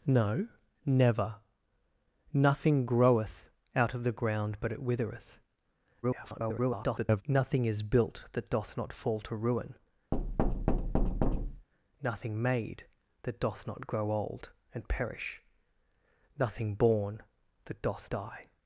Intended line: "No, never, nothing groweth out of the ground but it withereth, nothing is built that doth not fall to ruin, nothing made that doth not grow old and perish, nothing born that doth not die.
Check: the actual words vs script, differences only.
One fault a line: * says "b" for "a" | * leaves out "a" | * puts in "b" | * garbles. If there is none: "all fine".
* garbles
* leaves out "not"